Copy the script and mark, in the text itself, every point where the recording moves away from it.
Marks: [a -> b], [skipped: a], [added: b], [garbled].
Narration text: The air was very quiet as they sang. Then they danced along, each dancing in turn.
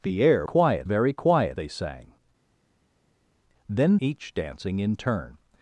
The air [was -> quiet] very quiet [skipped: as] they sang. Then [skipped: they danced along,] each dancing in turn.